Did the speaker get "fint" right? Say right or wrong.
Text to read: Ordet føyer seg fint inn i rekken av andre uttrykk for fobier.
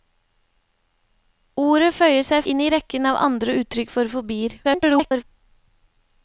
wrong